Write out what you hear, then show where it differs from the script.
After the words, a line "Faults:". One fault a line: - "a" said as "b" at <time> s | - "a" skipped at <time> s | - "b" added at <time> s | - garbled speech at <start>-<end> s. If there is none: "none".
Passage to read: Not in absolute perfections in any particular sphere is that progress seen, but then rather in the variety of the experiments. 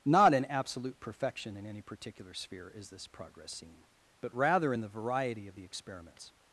Not in absolute perfection in any particular sphere is this progress seen, but rather in the variety of the experiments.
Faults:
- "perfections" said as "perfection" at 1.0 s
- "that" said as "this" at 2.9 s
- "then" skipped at 4.3 s